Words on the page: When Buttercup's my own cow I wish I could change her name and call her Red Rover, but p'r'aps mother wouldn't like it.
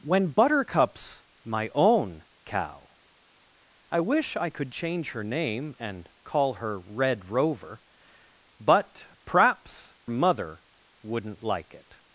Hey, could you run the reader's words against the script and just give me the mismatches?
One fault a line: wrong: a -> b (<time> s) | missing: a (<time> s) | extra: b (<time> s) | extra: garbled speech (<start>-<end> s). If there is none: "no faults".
no faults